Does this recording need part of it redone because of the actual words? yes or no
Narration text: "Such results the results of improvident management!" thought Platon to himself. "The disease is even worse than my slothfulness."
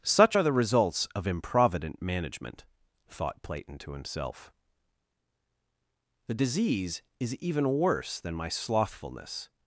yes